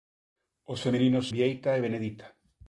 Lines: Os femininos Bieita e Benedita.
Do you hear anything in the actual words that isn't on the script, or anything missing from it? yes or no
no